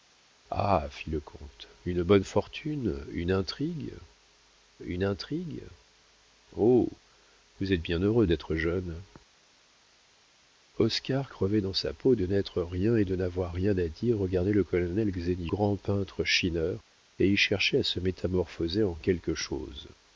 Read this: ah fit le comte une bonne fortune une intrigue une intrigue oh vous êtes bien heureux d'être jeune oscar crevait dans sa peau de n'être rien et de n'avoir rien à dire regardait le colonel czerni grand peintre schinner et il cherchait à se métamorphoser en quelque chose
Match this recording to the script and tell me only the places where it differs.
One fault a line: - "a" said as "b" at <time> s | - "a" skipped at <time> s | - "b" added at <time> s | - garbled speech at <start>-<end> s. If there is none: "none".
none